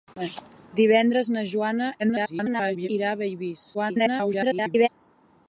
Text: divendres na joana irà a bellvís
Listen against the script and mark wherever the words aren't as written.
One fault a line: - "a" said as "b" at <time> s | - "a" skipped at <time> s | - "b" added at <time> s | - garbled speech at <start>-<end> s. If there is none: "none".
- garbled speech at 2.0-2.9 s
- garbled speech at 3.7-4.9 s